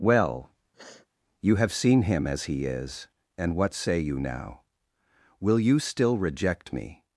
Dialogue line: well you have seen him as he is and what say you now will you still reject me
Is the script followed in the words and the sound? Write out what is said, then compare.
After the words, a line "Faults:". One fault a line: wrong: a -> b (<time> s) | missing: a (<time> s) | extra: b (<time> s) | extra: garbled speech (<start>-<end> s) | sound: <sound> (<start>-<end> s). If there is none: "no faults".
well you have seen him as he is and what say you now will you still reject me
Faults:
sound: sniff (0.7-1.1 s)